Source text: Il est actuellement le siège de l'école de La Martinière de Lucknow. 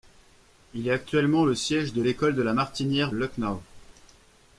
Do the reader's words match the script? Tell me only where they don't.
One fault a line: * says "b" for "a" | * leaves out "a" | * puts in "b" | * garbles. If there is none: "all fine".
* leaves out "de"